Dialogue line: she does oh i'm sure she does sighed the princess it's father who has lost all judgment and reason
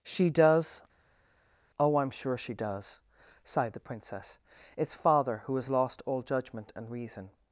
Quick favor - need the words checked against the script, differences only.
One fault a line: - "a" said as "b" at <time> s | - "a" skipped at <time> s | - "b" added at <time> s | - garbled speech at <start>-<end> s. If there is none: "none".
none